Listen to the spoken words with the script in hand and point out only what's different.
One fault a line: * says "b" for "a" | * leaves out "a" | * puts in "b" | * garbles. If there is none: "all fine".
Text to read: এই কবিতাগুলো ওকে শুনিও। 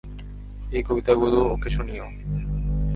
all fine